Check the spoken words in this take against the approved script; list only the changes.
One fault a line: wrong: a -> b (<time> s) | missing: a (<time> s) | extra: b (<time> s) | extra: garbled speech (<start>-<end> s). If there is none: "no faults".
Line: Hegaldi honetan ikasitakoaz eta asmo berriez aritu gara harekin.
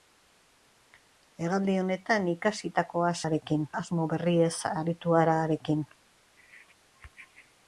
wrong: eta -> harekin (3.2 s)